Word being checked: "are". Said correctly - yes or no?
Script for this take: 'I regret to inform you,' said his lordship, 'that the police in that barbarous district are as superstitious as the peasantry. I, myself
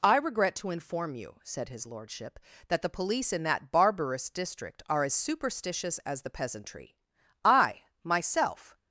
yes